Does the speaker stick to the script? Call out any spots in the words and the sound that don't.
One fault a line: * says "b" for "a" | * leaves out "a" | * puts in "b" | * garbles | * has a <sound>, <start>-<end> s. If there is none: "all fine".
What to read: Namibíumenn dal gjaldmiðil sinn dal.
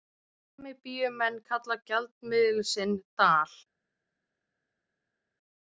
* says "kalla" for "dal"